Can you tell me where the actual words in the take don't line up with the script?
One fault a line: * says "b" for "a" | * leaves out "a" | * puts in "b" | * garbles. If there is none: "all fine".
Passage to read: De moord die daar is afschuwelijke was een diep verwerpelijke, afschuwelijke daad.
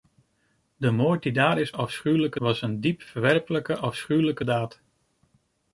all fine